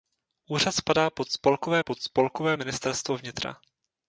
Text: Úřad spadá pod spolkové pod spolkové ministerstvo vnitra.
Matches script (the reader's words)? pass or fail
pass